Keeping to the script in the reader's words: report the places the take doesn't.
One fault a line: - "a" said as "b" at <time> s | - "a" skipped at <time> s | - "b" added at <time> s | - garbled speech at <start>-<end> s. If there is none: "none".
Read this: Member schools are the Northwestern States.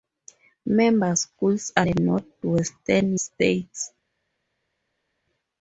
none